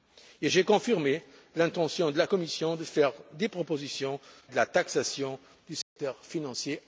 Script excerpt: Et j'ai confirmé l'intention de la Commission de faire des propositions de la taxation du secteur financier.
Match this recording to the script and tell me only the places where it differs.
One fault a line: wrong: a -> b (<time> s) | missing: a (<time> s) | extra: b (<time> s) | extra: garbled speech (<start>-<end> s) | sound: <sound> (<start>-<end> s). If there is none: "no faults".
sound: dropout (5.8-6.0 s)